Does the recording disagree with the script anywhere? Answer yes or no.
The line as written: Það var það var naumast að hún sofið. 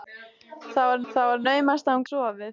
no